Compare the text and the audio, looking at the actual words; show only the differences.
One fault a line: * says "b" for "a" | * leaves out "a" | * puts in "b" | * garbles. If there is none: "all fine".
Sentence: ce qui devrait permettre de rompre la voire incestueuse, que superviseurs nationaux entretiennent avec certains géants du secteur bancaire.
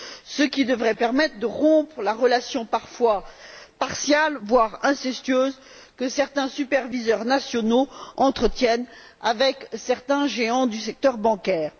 * puts in "relation parfois partiale"
* puts in "certains"